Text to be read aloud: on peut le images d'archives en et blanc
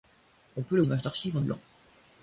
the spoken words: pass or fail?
pass